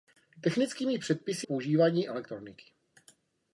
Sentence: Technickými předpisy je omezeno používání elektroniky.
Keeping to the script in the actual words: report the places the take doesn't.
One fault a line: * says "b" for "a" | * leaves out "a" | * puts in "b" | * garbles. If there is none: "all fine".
* leaves out "je omezeno"